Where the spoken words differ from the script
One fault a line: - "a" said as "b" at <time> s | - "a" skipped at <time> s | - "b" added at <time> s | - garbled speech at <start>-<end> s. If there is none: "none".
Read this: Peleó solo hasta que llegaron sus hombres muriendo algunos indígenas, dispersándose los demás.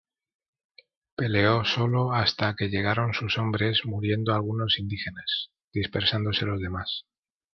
none